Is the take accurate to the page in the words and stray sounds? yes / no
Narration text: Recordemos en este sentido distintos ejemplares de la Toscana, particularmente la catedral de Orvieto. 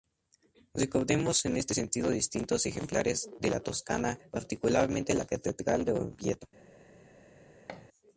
no